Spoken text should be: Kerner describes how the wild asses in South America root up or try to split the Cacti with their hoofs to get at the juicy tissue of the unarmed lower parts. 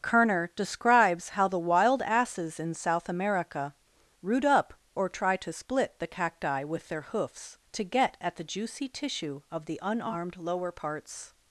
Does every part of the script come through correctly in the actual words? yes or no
yes